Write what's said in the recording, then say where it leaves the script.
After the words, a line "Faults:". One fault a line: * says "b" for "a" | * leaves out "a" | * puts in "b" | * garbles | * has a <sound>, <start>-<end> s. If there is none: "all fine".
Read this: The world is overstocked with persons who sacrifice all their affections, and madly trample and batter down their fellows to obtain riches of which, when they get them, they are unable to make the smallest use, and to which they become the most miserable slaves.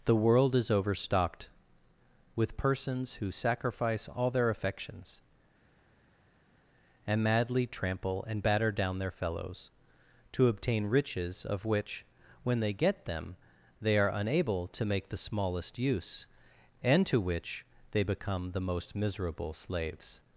The world is overstocked with persons who sacrifice all their affections, and madly trample and batter down their fellows to obtain riches of which, when they get them, they are unable to make the smallest use, and to which they become the most miserable slaves.
Faults:
all fine